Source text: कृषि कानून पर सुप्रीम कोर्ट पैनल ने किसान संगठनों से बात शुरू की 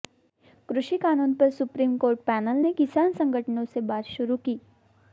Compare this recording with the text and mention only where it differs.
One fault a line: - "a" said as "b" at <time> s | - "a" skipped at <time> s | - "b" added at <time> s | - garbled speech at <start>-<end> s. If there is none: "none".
none